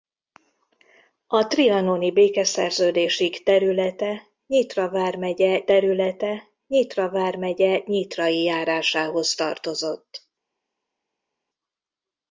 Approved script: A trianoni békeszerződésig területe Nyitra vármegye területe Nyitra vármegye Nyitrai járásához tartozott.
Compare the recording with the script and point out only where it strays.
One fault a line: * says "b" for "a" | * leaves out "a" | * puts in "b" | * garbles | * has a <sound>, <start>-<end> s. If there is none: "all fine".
all fine